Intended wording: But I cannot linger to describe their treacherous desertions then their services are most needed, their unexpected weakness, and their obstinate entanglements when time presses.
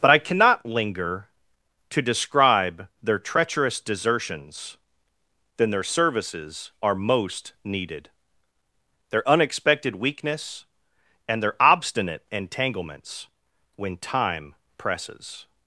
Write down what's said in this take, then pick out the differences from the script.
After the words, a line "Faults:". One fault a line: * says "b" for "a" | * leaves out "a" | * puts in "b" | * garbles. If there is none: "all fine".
But I cannot linger to describe their treacherous desertions then their services are most needed, their unexpected weakness, and their obstinate entanglements when time presses.
Faults:
all fine